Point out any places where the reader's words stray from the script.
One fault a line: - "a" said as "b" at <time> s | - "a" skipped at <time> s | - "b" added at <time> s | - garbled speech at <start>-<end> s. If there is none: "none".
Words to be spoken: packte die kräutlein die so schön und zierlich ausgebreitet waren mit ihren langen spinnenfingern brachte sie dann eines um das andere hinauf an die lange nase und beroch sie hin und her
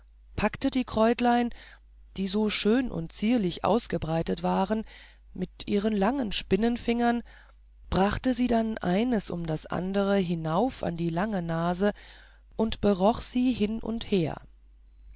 none